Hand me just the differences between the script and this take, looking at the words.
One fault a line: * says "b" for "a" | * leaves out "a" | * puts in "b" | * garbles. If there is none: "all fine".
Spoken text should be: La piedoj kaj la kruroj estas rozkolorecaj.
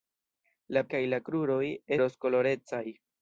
* leaves out "piedoj"
* leaves out "estas"